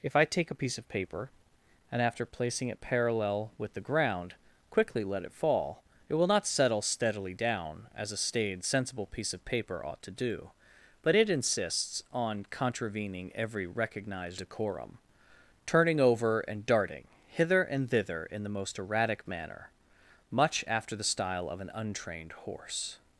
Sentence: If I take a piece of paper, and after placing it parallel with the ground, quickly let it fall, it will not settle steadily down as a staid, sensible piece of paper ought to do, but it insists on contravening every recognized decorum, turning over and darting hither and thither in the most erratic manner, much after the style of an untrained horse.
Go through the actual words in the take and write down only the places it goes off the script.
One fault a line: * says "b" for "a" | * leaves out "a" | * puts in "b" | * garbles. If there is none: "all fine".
all fine